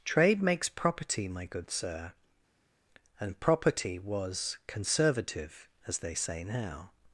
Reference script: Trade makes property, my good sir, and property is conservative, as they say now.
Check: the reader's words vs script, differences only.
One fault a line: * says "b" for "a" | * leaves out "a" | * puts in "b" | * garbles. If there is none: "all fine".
* says "was" for "is"